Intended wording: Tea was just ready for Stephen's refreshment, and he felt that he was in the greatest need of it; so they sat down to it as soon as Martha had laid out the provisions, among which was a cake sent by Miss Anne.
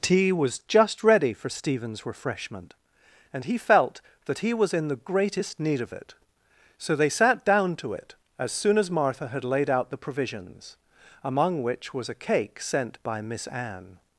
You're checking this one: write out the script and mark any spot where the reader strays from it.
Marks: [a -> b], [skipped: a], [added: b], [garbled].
Tea was just ready for Stephen's refreshment, and he felt that he was in the greatest need of it; so they sat down to it as soon as Martha had laid out the provisions, among which was a cake sent by Miss Anne.